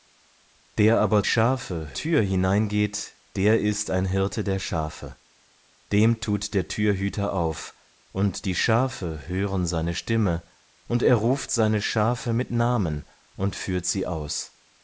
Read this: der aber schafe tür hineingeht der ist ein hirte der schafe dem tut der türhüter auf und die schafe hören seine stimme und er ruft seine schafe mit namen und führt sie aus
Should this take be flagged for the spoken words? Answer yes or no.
no